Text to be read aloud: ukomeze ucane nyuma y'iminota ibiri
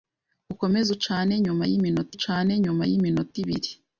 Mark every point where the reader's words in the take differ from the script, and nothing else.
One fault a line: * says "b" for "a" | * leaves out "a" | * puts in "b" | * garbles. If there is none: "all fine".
* puts in "ucane nyuma y'iminota"